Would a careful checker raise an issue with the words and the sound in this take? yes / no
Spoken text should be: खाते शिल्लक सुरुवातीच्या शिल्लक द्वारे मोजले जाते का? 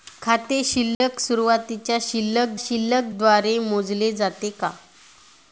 yes